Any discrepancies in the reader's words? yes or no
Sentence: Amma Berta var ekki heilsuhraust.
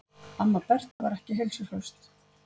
no